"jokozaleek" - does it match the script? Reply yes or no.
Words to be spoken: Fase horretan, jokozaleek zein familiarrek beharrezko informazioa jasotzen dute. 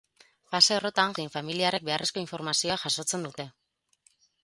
no